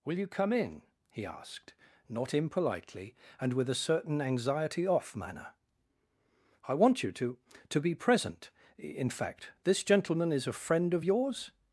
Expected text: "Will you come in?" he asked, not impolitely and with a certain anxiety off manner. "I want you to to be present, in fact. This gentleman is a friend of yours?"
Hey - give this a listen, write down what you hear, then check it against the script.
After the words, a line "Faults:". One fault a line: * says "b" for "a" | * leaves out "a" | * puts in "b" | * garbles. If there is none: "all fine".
"Will you come in?" he asked, not impolitely and with a certain anxiety off manner. "I want you to to be present, in fact. This gentleman is a friend of yours?"
Faults:
all fine